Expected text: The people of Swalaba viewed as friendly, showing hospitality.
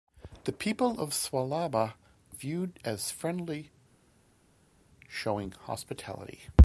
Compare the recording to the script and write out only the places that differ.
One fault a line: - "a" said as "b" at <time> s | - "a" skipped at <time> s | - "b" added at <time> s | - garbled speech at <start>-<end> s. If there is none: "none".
none